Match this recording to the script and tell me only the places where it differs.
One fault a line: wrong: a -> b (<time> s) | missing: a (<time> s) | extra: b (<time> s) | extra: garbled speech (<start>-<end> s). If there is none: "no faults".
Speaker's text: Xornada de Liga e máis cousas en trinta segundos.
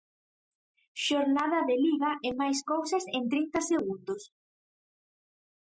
no faults